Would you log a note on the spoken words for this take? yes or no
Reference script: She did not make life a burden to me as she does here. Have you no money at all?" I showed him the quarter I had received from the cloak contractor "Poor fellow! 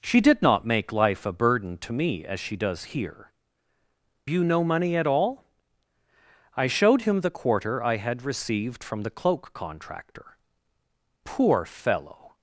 yes